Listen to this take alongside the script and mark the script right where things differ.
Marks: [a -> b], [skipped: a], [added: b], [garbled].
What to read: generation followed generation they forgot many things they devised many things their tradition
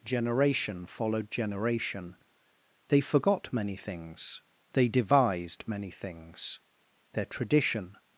generation followed generation they forgot many things they devised many things their tradition